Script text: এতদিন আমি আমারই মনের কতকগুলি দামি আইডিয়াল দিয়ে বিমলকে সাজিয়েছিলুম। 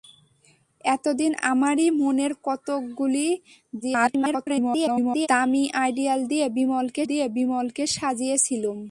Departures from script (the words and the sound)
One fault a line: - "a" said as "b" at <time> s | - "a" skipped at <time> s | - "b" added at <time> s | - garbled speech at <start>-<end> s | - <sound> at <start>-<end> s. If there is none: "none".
- "আমি" skipped at 1.3 s
- garbled speech at 3.8-5.3 s
- "দিয়ে বিমলকে" added at 7.0 s